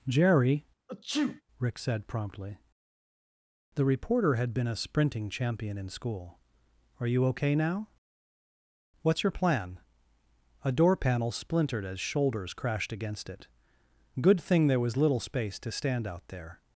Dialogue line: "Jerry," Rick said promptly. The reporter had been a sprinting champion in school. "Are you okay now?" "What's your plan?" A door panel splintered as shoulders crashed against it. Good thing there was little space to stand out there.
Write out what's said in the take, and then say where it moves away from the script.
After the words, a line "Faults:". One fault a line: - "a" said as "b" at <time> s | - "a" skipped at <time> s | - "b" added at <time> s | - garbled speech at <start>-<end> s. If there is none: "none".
"Jerry," Rick said promptly. The reporter had been a sprinting champion in school. "Are you okay now?" "What's your plan?" A door panel splintered as shoulders crashed against it. Good thing there was little space to stand out there.
Faults:
none